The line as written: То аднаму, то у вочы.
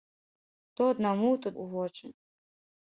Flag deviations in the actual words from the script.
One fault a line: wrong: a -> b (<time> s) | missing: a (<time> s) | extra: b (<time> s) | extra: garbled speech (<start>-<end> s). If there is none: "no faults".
no faults